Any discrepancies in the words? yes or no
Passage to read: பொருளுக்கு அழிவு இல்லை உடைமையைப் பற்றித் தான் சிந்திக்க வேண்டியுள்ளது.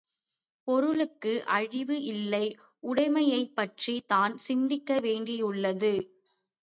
no